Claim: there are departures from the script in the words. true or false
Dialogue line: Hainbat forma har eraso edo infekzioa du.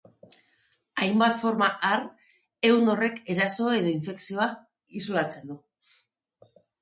true